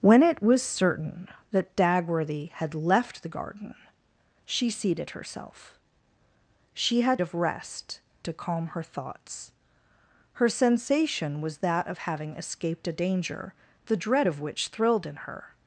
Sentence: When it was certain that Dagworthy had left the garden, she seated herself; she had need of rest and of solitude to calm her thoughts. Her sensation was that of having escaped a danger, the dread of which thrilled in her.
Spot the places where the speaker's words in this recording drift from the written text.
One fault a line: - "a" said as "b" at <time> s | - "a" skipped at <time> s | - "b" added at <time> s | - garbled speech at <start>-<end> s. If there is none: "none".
- "need" skipped at 7.2 s
- "and of solitude" skipped at 8.0 s